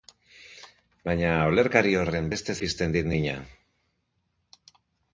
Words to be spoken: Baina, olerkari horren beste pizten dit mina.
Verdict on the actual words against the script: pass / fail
pass